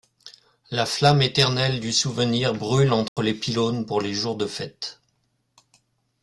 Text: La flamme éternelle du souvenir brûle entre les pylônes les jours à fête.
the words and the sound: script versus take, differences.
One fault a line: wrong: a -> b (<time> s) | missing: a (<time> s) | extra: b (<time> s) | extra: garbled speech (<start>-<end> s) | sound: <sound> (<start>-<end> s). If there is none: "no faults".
sound: dropout (3.1-3.2 s)
extra: pour (3.9 s)
wrong: à -> de (4.3 s)